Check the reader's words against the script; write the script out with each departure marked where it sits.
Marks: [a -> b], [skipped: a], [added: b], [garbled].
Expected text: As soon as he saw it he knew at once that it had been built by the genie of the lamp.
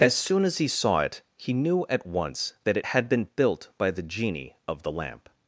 As soon as he saw it he knew at once that it had been built by the genie of the lamp.